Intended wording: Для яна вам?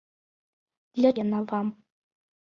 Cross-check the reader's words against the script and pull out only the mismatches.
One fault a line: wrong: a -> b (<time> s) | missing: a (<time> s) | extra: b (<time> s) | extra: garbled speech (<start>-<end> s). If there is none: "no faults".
no faults